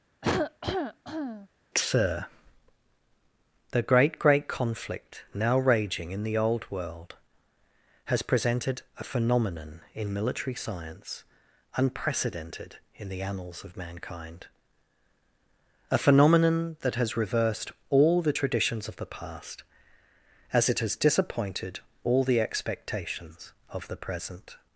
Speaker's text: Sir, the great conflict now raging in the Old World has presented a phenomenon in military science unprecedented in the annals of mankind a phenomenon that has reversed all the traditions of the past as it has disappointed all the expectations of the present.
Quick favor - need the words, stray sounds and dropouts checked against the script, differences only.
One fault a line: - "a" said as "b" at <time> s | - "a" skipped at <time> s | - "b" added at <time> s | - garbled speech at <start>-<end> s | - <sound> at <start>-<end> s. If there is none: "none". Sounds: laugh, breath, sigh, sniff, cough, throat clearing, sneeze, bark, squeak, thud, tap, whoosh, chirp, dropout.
- cough at 0.2-1.5 s
- "great" added at 4.2 s